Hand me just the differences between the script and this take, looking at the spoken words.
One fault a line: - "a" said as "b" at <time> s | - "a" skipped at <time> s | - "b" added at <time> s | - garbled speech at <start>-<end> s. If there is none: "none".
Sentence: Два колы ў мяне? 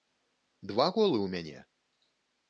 none